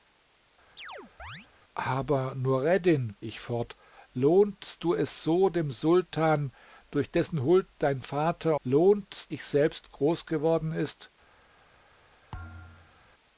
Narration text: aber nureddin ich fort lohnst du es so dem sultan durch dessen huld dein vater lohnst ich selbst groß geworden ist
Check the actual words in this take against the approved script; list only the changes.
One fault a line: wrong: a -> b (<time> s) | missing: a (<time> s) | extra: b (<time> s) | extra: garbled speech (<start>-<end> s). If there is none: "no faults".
no faults